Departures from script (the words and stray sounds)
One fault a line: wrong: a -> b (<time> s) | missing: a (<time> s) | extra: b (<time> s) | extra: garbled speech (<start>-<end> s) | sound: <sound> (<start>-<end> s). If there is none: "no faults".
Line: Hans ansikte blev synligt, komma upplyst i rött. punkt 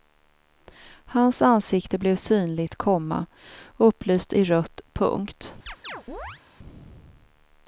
sound: chirp (5.7-6.4 s)